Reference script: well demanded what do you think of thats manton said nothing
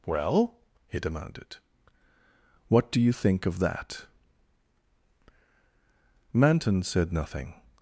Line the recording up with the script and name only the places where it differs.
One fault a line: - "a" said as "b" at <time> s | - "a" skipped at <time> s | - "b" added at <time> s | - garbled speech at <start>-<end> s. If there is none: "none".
- "he" added at 0.9 s
- "thats" said as "that" at 3.6 s